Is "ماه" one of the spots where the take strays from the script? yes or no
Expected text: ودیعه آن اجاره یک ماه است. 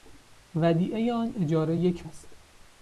yes